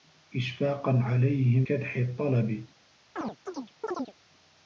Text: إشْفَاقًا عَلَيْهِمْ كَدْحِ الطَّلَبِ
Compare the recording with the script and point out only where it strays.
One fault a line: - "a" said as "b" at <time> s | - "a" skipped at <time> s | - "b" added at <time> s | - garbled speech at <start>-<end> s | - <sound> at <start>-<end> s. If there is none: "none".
- chirp at 3.2-4.1 s